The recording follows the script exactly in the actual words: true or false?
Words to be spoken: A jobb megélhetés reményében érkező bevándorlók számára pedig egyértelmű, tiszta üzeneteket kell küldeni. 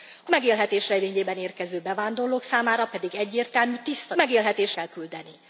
false